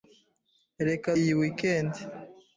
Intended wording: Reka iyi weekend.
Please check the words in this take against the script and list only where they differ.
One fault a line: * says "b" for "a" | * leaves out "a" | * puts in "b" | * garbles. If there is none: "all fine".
all fine